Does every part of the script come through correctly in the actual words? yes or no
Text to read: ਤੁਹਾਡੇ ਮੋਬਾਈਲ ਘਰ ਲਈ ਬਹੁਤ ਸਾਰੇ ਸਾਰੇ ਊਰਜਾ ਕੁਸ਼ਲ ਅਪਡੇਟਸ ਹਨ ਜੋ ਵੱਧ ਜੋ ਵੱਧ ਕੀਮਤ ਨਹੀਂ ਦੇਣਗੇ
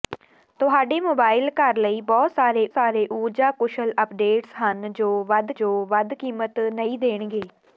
yes